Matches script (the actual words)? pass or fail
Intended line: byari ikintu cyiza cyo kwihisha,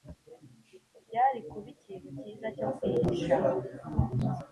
fail